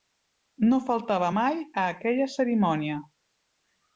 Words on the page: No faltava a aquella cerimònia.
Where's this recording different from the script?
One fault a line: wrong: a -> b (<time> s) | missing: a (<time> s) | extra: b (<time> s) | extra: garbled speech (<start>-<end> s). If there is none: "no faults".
extra: mai (1.4 s)